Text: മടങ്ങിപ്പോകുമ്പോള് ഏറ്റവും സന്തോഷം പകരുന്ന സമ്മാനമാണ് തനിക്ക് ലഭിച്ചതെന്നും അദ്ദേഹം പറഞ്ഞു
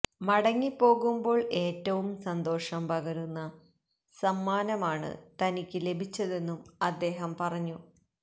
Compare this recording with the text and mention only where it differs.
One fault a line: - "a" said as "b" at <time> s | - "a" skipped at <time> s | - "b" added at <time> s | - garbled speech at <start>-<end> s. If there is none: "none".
none